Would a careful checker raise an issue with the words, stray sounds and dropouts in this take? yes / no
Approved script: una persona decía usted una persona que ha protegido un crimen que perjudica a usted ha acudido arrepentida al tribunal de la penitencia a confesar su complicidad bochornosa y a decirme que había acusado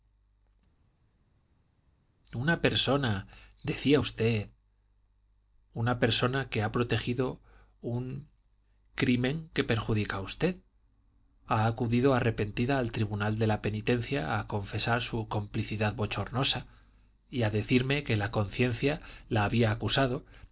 yes